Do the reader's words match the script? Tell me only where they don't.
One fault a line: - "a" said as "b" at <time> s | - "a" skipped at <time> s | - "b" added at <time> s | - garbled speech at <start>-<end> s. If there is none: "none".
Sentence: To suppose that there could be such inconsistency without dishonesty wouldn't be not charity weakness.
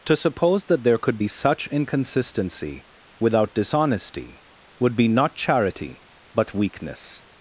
- "wouldn't" said as "would" at 4.8 s
- "but" added at 6.3 s